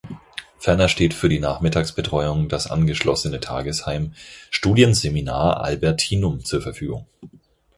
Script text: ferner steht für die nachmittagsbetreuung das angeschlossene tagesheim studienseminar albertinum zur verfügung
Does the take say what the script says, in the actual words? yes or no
yes